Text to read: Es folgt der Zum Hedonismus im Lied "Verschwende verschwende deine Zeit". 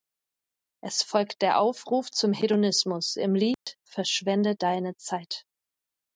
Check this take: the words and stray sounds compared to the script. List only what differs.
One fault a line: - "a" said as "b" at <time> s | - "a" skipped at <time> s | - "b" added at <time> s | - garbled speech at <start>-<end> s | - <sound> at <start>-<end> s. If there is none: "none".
- "Aufruf" added at 1.6 s
- dropout at 3.5-3.7 s
- "verschwende" skipped at 4.5 s